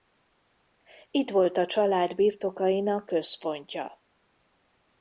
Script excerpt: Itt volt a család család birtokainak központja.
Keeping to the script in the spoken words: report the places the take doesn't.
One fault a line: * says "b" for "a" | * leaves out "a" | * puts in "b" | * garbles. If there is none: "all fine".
* leaves out "család"